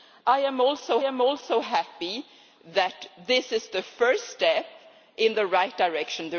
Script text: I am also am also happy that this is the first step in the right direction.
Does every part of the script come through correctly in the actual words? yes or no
yes